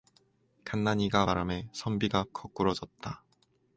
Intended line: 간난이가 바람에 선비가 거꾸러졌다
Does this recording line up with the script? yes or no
yes